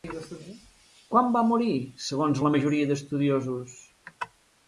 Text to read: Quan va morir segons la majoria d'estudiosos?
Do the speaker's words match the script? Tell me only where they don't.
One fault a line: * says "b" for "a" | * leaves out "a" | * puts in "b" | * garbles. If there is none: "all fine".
all fine